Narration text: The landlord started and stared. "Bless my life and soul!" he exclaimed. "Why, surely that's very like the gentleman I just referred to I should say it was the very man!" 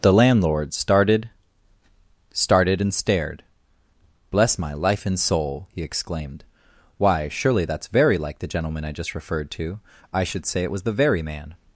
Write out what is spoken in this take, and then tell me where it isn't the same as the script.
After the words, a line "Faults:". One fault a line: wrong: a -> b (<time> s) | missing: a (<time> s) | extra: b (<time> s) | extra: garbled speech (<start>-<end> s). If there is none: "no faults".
The landlord started started and stared. "Bless my life and soul!" he exclaimed. "Why, surely that's very like the gentleman I just referred to I should say it was the very man!"
Faults:
extra: started (2.3 s)